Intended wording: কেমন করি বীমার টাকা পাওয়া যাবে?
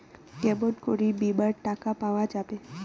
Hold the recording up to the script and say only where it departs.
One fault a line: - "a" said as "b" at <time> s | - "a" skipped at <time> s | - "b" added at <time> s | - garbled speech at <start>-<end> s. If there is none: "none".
none